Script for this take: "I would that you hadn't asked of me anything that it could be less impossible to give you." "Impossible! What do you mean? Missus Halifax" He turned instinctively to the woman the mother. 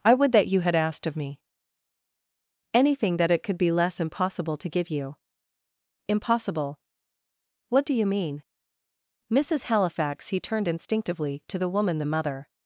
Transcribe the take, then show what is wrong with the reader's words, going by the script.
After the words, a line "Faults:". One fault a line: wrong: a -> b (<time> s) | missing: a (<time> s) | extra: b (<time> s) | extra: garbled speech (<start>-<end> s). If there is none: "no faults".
"I would that you had asked of me anything that it could be less impossible to give you." "Impossible! What do you mean? Missus Halifax" He turned instinctively to the woman the mother.
Faults:
wrong: hadn't -> had (0.6 s)